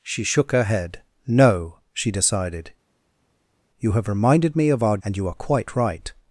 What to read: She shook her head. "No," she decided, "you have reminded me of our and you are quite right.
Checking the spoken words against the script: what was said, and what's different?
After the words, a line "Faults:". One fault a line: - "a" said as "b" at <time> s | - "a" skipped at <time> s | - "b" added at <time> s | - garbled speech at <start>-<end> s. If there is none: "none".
She shook her head. "No," she decided, "you have reminded me of our and you are quite right.
Faults:
none